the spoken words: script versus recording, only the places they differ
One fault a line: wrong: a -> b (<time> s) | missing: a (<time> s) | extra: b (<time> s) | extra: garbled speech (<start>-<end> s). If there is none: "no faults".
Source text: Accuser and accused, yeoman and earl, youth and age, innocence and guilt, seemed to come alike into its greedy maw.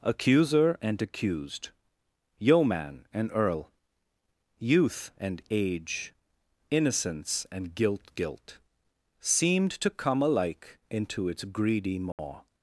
extra: guilt (8.2 s)